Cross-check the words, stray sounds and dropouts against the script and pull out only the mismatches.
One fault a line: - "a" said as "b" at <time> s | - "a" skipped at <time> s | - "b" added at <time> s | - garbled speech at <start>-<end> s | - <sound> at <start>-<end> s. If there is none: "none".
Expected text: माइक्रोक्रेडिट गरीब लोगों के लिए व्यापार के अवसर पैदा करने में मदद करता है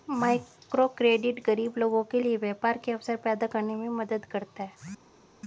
none